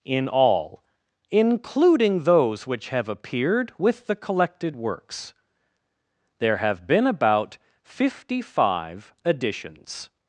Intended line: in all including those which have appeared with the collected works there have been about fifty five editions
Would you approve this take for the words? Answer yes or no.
yes